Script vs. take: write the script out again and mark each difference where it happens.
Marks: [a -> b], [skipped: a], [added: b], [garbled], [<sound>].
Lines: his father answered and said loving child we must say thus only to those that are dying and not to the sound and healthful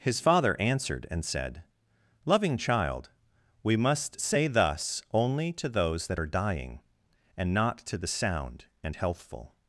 his father answered and said loving child we must say thus only to those that are dying and not to the sound and healthful